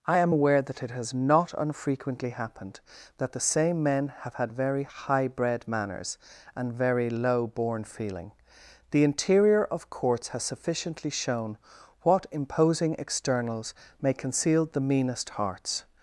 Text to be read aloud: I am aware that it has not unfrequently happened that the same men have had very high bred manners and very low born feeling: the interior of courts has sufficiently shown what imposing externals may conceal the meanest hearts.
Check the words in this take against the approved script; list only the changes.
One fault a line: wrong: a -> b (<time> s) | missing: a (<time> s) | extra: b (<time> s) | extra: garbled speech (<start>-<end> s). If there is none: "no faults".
no faults